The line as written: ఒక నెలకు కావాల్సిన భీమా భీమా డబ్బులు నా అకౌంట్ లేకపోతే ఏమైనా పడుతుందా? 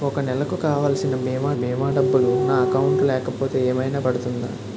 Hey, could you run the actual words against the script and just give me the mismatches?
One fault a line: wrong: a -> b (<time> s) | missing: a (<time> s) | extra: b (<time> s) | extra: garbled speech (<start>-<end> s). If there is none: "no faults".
no faults